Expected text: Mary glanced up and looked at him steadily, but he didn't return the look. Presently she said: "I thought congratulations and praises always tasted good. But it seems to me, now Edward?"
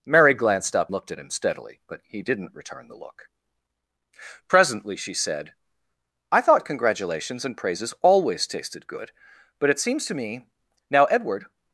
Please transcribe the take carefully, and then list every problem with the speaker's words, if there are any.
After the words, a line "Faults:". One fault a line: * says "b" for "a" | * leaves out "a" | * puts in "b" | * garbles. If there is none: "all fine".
Mary glanced up looked at him steadily, but he didn't return the look. Presently she said: "I thought congratulations and praises always tasted good. But it seems to me, now Edward?"
Faults:
* leaves out "and"